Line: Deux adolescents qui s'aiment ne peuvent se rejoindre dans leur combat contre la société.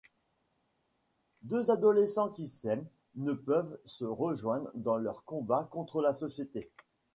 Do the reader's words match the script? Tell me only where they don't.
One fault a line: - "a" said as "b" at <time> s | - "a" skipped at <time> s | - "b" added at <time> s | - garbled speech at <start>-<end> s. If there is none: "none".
none